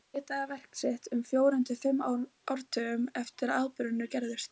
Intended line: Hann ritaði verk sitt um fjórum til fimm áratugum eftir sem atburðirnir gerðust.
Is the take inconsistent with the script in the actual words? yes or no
yes